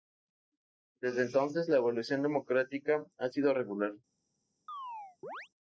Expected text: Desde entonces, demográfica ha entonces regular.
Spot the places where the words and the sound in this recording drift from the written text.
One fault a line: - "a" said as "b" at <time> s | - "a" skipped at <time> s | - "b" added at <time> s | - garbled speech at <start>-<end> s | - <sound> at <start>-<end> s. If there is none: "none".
- "la evolución" added at 1.7 s
- "entonces" said as "sido" at 3.3 s
- chirp at 4.7-5.5 s